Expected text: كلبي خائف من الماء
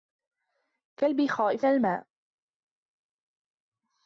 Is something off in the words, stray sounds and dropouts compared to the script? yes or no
yes